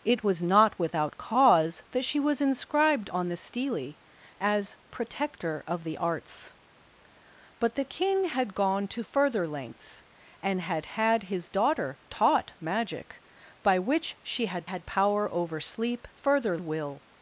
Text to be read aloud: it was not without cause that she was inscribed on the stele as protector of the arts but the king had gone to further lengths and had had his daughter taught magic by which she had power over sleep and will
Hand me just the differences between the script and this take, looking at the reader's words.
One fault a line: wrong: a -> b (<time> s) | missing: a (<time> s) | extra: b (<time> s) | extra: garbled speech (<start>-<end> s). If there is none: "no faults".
extra: had (14.6 s)
wrong: and -> further (16.1 s)